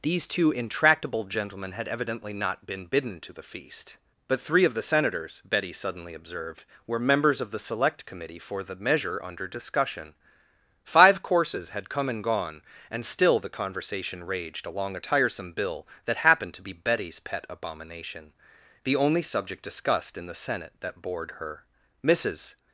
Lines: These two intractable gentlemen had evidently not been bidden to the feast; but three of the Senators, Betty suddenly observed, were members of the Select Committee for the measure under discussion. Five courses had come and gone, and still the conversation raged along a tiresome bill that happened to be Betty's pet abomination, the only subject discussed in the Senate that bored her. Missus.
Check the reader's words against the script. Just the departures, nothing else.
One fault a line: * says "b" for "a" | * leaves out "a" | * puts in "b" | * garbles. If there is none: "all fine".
all fine